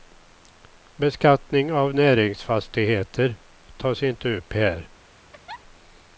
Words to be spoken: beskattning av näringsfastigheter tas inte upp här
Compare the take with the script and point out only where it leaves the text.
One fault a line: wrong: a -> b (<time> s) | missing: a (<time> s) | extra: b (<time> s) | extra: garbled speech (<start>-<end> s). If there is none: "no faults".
no faults